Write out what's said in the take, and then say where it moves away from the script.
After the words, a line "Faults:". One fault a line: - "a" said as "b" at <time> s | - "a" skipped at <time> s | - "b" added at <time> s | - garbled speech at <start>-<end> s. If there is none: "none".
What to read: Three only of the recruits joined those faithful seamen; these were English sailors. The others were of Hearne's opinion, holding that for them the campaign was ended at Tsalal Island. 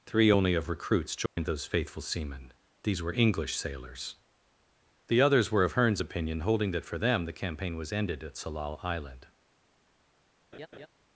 Three only of recruits joined those faithful seamen; these were English sailors. The others were of Hearne's opinion, holding that for them the campaign was ended at Tsalal Island.
Faults:
- "the" skipped at 0.7 s